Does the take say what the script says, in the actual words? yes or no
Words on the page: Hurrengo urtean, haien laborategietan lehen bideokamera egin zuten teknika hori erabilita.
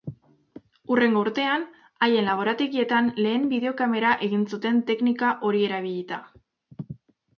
yes